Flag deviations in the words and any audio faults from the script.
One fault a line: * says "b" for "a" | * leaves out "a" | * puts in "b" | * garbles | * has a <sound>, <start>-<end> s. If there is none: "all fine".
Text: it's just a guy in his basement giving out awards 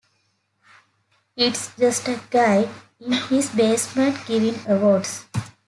* leaves out "out"